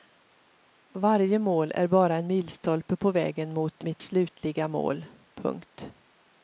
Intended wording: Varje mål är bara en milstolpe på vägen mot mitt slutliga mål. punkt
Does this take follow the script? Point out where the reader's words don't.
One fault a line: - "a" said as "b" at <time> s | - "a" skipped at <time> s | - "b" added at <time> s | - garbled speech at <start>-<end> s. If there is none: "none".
none